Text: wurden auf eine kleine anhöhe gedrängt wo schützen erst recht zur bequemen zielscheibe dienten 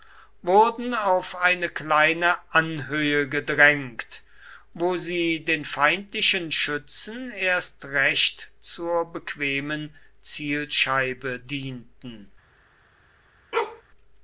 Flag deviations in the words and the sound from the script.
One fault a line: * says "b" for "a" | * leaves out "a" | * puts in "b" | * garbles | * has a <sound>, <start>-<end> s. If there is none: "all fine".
* puts in "sie den feindlichen"
* has a bark, 13.5-13.8 s